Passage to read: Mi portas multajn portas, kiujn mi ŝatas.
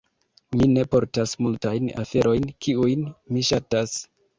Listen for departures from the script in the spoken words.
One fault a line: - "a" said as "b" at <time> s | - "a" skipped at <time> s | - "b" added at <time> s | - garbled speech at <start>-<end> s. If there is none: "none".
- "ne" added at 0.7 s
- "portas" said as "aferojn" at 2.1 s